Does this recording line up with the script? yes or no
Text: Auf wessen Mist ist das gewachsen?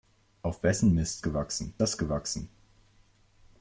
no